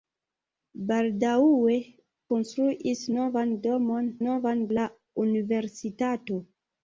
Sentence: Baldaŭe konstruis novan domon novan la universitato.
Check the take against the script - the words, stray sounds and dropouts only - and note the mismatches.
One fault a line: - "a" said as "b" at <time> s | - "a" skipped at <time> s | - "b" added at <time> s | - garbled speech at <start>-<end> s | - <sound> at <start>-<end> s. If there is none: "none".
none